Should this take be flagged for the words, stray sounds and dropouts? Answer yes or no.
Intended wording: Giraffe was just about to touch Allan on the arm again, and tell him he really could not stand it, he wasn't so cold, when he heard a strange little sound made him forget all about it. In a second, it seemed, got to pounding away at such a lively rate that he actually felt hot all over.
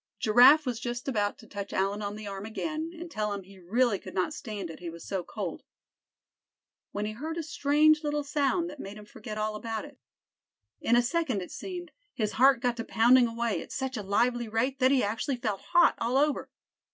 yes